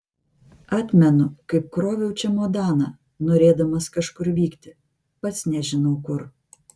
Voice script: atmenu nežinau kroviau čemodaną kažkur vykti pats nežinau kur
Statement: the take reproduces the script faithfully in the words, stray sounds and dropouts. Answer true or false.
false